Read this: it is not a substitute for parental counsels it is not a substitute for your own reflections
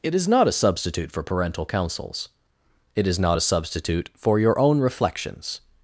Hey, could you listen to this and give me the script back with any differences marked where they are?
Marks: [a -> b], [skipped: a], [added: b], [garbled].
it is not a substitute for parental counsels it is not a substitute for your own reflections